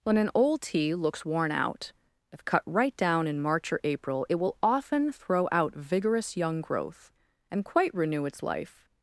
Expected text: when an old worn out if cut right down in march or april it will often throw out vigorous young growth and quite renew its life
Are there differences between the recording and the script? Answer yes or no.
yes